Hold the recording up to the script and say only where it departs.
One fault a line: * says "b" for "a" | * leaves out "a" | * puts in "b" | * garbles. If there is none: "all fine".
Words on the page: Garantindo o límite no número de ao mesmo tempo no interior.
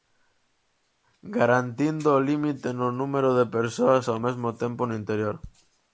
* puts in "persoas"